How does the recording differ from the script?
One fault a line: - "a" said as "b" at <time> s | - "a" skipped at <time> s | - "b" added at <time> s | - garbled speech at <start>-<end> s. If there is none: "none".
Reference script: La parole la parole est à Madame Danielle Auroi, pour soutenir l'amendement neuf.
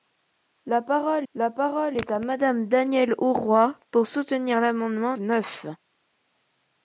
none